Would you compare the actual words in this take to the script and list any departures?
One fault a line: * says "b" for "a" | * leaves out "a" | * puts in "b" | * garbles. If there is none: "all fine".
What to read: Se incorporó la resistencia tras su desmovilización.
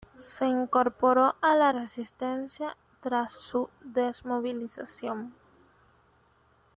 * puts in "a"